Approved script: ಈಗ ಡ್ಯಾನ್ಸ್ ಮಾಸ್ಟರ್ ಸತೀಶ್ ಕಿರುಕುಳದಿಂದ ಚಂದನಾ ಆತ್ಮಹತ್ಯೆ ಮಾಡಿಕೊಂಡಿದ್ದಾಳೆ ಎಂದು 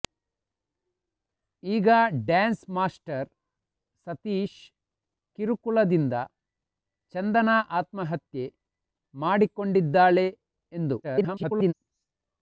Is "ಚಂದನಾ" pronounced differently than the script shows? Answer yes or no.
no